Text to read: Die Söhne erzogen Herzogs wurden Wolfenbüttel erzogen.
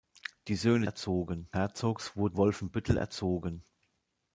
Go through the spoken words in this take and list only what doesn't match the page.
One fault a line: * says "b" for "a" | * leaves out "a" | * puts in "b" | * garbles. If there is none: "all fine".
all fine